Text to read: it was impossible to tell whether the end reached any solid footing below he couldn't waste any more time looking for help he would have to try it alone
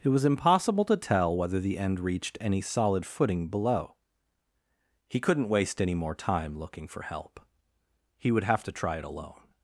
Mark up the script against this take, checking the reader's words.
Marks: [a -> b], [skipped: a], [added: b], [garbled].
it was impossible to tell whether the end reached any solid footing below he couldn't waste any more time looking for help he would have to try it alone